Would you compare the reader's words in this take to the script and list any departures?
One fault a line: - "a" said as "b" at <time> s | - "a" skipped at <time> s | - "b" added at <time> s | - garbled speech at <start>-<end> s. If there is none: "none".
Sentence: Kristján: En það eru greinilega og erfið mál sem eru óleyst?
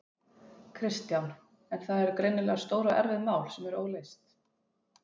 - "stór" added at 2.6 s